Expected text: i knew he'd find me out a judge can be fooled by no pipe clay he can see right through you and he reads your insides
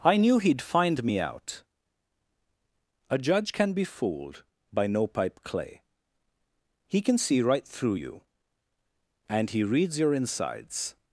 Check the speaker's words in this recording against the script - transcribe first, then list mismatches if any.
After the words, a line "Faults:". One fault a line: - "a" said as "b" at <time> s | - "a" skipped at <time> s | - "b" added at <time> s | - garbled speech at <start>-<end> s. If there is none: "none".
i knew he'd find me out a judge can be fooled by no pipe clay he can see right through you and he reads your insides
Faults:
none